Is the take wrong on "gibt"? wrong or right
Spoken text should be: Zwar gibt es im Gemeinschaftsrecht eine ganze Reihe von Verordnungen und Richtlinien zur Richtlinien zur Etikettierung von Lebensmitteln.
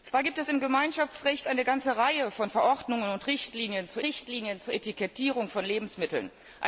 right